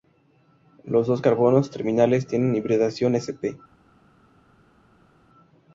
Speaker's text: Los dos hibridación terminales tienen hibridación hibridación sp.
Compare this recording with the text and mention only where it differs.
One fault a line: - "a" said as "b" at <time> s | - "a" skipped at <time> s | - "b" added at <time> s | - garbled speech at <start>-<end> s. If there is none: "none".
- "hibridación" said as "carbonos" at 1.2 s
- "hibridación" skipped at 3.2 s